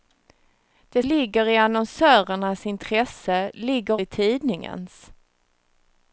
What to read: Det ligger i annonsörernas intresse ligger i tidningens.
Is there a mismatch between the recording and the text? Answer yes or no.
no